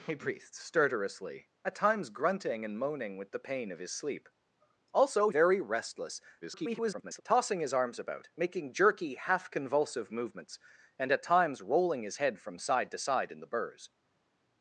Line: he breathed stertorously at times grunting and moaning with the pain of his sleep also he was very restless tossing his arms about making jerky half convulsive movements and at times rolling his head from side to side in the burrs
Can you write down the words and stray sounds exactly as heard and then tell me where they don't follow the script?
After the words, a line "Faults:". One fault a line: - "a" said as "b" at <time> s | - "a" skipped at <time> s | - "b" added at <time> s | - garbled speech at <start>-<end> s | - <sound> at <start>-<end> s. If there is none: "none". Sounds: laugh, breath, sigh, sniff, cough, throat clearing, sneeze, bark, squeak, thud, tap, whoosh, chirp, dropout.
he breathed stertorously at times grunting and moaning with the pain of his sleep also very restless [garbled] tossing his arms about making jerky half convulsive movements and at times rolling his head from side to side in the burrs
Faults:
- "he was" skipped at 5.3 s
- garbled speech at 6.4-7.2 s